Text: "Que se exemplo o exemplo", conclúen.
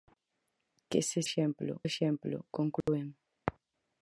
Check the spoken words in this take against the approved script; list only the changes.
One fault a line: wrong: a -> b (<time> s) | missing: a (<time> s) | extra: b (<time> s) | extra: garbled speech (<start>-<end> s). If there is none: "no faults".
no faults